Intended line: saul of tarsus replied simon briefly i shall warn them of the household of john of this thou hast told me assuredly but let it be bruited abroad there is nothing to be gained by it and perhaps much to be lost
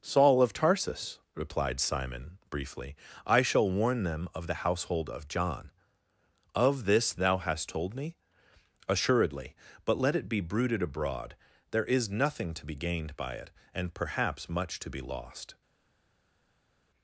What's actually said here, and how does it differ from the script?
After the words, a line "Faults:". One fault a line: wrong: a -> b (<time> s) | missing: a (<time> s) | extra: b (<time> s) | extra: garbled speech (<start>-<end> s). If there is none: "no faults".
saul of tarsus replied simon briefly i shall warn them of the household of john of this thou hast told me assuredly but let it be bruited abroad there is nothing to be gained by it and perhaps much to be lost
Faults:
no faults